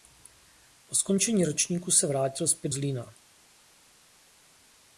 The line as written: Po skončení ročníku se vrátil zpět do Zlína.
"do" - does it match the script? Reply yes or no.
no